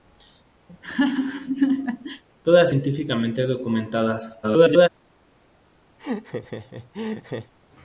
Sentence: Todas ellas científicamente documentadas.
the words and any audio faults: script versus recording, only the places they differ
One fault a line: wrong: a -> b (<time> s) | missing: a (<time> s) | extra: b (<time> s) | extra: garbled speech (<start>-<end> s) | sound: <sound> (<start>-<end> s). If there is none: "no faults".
sound: laugh (0.7-2.2 s)
missing: ellas (2.7 s)
extra: garbled speech (4.4-4.9 s)
sound: laugh (6.0-7.5 s)